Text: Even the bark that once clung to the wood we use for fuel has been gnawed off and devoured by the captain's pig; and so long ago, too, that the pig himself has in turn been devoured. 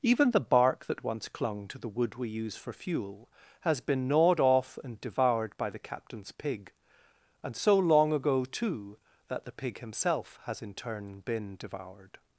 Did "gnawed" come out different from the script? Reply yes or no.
no